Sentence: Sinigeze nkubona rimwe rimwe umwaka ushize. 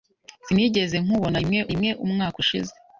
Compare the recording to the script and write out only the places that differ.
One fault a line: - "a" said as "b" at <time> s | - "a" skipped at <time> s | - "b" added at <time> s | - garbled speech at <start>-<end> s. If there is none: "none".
none